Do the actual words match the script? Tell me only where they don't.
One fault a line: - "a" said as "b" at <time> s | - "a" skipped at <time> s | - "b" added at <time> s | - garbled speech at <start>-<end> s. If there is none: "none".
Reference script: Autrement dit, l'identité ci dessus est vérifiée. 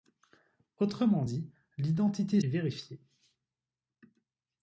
- "ci dessus" skipped at 2.4 s